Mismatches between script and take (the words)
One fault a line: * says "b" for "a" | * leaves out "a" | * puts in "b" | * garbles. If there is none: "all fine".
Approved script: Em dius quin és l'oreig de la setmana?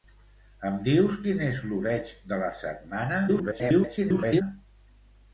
* garbles